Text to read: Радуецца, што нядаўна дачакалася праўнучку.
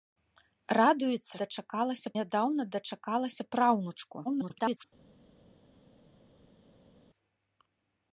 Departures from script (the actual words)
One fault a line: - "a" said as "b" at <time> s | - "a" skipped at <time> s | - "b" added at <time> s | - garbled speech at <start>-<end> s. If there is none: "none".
- "што" said as "дачакалася" at 1.4 s
- garbled speech at 4.2-4.8 s